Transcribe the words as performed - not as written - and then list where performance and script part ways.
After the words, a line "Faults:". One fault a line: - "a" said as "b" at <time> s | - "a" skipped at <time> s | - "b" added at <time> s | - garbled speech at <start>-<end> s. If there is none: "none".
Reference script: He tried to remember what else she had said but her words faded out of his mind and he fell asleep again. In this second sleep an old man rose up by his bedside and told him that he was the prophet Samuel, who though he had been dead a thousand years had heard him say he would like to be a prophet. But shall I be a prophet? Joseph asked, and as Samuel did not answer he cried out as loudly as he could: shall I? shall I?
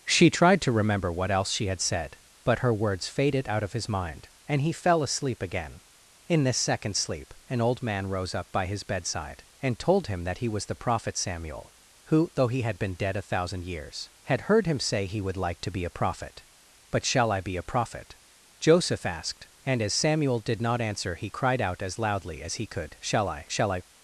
She tried to remember what else she had said but her words faded out of his mind and he fell asleep again. In this second sleep an old man rose up by his bedside and told him that he was the prophet Samuel, who though he had been dead a thousand years had heard him say he would like to be a prophet. But shall I be a prophet? Joseph asked, and as Samuel did not answer he cried out as loudly as he could: shall I? shall I?
Faults:
- "He" said as "She" at 0.1 s